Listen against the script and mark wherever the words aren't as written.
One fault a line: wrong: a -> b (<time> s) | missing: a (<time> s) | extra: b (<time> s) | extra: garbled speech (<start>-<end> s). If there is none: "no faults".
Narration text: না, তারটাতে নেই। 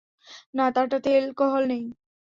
extra: এলকোহল (1.2 s)